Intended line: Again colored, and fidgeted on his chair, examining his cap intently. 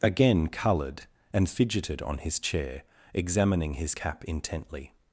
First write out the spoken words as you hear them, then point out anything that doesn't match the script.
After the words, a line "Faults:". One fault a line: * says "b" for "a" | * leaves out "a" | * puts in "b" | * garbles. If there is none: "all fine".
Again colored, and fidgeted on his chair, examining his cap intently.
Faults:
all fine